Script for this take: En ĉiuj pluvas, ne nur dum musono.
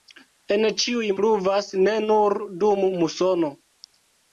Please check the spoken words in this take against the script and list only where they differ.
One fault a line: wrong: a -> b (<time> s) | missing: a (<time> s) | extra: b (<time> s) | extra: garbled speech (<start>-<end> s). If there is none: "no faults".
no faults